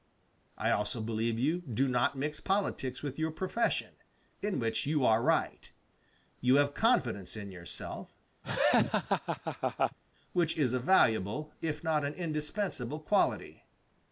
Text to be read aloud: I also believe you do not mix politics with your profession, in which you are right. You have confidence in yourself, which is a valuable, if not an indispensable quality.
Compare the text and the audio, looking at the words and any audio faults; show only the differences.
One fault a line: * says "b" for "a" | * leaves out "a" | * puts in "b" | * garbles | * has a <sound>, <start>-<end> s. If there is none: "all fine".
* has a laugh, 8.4-10.0 s